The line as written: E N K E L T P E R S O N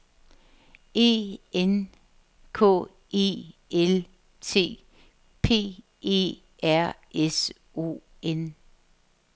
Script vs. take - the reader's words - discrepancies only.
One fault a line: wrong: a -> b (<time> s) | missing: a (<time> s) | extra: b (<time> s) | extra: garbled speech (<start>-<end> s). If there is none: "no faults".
no faults